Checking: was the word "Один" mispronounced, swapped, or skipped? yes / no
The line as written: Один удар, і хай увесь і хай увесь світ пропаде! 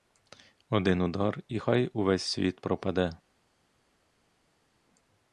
no